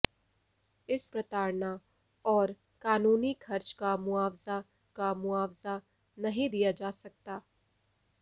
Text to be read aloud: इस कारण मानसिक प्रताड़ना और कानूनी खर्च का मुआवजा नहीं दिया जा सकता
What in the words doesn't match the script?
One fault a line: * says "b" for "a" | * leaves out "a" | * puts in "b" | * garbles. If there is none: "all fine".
* leaves out "कारण मानसिक"
* puts in "का मुआवजा"